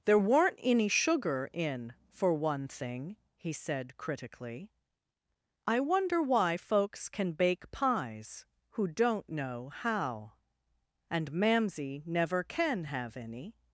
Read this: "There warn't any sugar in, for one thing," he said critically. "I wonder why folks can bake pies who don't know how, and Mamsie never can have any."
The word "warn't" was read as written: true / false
false